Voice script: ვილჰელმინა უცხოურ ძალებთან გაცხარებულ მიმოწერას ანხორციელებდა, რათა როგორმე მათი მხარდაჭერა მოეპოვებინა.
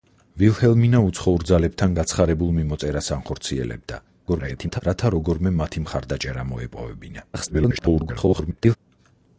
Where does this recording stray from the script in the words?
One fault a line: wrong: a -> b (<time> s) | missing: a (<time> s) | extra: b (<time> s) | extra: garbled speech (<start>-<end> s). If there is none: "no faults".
extra: garbled speech (4.3-4.8 s)
extra: garbled speech (7.3-8.8 s)